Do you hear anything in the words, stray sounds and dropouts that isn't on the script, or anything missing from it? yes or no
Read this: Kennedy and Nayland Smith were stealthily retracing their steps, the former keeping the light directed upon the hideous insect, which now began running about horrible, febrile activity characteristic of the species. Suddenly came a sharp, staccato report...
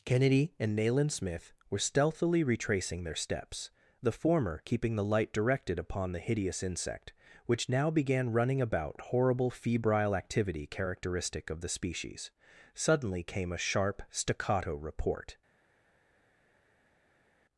no